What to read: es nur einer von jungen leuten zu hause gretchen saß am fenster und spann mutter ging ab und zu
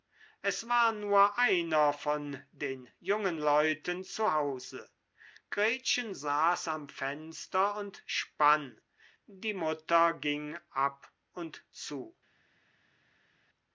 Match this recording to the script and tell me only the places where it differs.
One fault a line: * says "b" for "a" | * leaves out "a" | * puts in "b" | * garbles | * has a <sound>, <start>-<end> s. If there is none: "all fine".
* puts in "war"
* puts in "den"
* puts in "die"